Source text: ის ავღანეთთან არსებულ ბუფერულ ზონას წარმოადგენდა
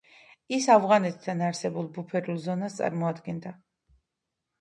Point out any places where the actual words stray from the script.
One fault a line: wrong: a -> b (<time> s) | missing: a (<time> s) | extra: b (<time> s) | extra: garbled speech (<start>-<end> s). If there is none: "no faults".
no faults